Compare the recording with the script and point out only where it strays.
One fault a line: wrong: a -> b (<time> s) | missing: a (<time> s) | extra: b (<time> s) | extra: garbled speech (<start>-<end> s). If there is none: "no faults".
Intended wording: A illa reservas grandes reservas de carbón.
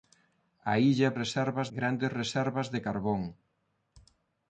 no faults